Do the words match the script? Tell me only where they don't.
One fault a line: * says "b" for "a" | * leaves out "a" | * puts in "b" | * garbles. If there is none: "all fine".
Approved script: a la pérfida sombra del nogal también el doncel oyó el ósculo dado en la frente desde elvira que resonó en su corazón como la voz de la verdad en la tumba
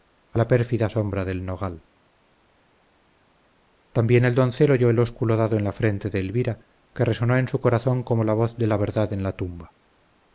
* says "de" for "desde"